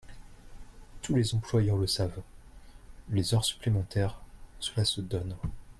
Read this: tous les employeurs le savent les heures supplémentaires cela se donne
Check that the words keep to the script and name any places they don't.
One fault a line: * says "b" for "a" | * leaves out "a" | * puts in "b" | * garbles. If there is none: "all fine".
all fine